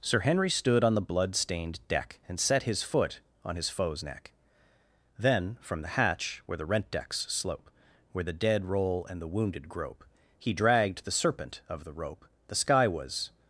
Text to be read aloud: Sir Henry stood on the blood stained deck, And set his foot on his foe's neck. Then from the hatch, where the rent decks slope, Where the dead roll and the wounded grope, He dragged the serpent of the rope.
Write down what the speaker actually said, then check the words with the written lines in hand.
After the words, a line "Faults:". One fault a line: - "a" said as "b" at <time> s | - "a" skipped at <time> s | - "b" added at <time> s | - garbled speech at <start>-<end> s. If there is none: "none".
Sir Henry stood on the blood stained deck, And set his foot on his foe's neck. Then from the hatch, where the rent decks slope, Where the dead roll and the wounded grope, He dragged the serpent of the rope. The sky was
Faults:
- "The sky was" added at 12.5 s